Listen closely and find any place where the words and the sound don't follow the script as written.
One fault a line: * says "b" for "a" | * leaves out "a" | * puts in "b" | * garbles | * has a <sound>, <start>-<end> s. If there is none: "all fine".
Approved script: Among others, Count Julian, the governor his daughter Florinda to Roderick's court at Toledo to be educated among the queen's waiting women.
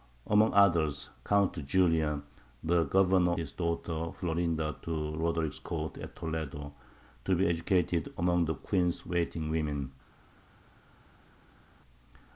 all fine